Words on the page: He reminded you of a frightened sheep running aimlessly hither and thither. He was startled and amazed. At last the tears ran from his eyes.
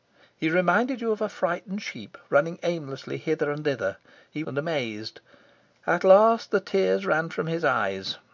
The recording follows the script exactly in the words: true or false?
false